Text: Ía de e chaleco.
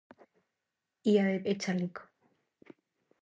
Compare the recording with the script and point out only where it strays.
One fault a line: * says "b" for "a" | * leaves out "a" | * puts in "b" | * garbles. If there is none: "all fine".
all fine